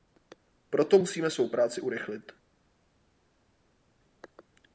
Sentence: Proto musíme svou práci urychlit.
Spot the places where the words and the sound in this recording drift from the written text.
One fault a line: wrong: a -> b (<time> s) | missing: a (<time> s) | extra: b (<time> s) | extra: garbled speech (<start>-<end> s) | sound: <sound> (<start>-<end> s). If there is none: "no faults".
no faults